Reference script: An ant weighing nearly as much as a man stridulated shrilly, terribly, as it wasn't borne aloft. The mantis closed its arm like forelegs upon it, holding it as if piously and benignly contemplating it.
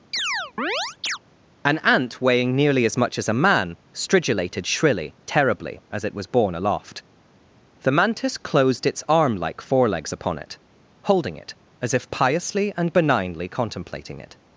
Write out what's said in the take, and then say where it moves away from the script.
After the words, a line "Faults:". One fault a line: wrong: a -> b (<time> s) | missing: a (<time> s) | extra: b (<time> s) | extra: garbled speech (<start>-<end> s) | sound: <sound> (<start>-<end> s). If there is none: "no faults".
An ant weighing nearly as much as a man stridulated shrilly, terribly, as it was borne aloft. The mantis closed its arm like forelegs upon it, holding it as if piously and benignly contemplating it.
Faults:
sound: chirp (0.1-1.2 s)
wrong: wasn't -> was (6.1 s)